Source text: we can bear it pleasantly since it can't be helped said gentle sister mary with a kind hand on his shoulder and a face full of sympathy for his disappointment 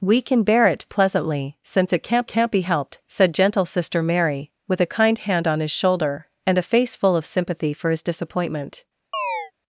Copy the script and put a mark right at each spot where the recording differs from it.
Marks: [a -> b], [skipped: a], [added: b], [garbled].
we can bear it pleasantly since it can't [added: can't] be helped said gentle sister mary with a kind hand on his shoulder and a face full of sympathy for his disappointment